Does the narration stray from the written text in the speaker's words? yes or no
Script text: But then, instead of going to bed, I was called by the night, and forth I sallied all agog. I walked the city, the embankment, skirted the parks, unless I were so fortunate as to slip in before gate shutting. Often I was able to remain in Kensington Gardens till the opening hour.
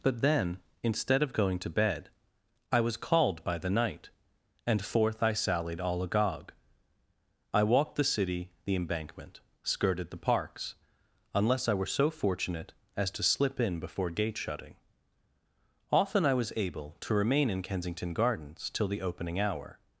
no